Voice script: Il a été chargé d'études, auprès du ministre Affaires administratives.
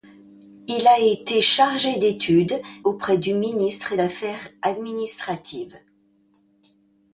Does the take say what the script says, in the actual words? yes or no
yes